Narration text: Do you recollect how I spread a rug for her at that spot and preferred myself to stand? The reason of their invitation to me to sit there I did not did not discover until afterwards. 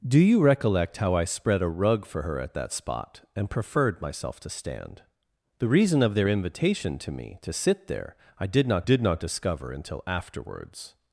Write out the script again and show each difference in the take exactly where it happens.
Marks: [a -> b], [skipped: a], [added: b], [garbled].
Do you recollect how I spread a rug for her at that spot and preferred myself to stand? The reason of their invitation to me to sit there I did not did not discover until afterwards.